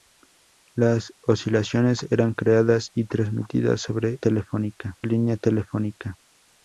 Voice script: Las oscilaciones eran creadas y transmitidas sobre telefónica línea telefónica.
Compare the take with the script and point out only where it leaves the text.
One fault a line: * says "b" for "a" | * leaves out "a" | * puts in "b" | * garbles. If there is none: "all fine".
all fine